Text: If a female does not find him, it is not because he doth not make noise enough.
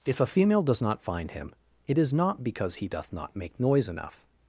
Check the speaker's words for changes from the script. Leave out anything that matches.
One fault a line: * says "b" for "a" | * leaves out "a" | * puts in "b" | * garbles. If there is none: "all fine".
all fine